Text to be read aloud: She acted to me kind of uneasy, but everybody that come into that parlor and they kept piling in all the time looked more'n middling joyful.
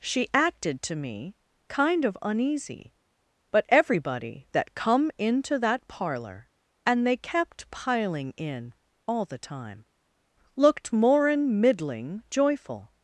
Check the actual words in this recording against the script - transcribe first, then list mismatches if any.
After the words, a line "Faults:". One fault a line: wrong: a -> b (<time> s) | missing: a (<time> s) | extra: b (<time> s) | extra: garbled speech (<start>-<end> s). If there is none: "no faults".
She acted to me kind of uneasy, but everybody that come into that parlor and they kept piling in all the time looked more'n middling joyful.
Faults:
no faults